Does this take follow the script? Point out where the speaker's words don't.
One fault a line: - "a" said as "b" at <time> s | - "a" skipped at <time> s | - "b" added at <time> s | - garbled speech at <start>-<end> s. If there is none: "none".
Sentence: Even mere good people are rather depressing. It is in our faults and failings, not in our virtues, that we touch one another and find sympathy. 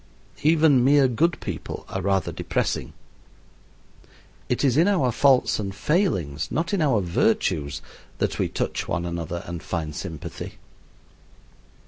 none